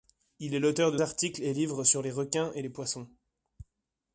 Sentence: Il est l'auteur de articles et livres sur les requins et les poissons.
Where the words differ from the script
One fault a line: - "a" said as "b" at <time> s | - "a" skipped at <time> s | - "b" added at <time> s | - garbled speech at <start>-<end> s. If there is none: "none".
none